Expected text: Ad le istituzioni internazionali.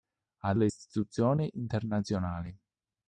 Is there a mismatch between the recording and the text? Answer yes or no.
no